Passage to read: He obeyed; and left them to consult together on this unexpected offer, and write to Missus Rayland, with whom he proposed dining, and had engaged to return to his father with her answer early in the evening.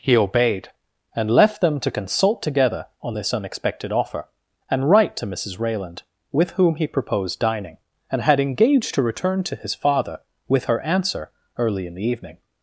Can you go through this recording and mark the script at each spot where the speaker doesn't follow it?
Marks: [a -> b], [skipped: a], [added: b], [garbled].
He obeyed; and left them to consult together on this unexpected offer, and write to Missus Rayland, with whom he proposed dining, and had engaged to return to his father with her answer early in the evening.